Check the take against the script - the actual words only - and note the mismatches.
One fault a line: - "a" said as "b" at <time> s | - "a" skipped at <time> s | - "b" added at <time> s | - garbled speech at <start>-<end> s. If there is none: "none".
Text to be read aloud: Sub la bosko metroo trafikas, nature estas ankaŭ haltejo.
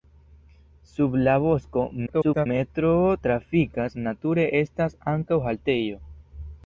- garbled speech at 2.1-2.5 s